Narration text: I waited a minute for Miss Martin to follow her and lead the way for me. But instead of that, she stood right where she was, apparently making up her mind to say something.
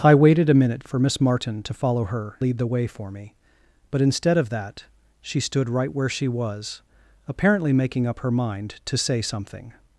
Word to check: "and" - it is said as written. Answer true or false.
false